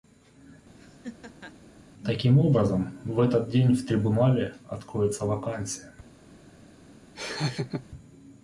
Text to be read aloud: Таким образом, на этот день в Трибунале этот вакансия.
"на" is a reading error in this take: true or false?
true